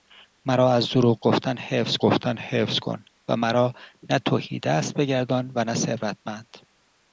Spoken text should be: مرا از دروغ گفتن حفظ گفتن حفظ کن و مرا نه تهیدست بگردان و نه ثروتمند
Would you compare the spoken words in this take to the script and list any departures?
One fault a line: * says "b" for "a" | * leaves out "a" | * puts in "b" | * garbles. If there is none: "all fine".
all fine